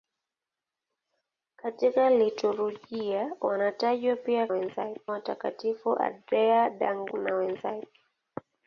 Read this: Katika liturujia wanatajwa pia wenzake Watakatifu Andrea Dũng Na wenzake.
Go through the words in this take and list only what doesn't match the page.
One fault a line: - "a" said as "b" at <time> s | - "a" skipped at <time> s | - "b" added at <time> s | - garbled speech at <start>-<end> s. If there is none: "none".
none